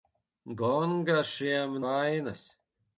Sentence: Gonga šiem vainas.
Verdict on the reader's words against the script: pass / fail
pass